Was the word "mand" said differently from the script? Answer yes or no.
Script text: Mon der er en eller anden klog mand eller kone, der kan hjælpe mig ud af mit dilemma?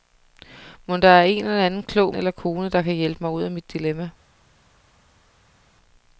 yes